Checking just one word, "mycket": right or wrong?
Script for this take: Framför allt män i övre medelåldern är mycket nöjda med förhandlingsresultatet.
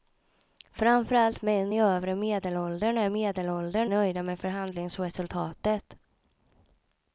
wrong